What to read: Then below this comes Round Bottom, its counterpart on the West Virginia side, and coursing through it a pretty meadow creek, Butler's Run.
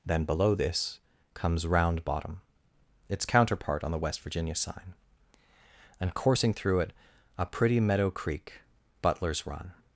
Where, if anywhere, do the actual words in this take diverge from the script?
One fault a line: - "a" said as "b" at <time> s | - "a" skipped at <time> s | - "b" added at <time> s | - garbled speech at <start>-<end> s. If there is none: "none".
- "side" said as "sign" at 4.5 s